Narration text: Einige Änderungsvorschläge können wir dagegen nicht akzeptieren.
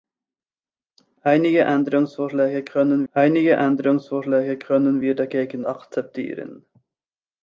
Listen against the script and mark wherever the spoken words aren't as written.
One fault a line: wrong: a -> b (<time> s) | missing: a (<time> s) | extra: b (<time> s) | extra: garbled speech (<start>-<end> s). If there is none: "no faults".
extra: einige Änderungsvorschläge können (3.1 s)
missing: nicht (5.6 s)